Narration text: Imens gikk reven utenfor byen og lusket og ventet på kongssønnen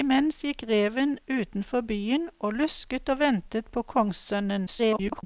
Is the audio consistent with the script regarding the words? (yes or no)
no